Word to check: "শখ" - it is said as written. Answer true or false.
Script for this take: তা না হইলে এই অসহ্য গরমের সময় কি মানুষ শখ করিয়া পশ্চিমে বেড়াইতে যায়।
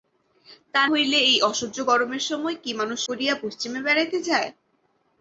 false